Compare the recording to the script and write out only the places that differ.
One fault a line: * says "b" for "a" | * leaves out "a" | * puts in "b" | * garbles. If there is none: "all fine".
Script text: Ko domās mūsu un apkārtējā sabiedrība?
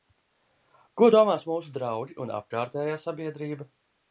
* puts in "draugi"